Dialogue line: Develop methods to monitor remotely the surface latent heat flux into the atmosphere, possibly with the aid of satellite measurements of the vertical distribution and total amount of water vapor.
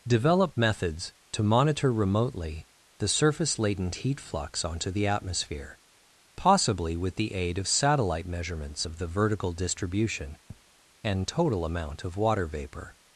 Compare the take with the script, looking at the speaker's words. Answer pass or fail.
fail